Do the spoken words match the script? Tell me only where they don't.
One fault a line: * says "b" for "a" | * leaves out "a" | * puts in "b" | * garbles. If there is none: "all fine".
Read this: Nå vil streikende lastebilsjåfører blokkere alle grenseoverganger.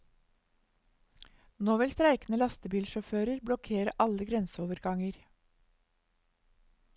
all fine